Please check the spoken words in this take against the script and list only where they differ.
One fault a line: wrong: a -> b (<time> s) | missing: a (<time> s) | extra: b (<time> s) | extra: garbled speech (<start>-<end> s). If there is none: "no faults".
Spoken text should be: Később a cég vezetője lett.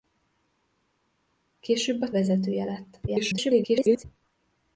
missing: cég (2.1 s)
extra: garbled speech (3.1-4.1 s)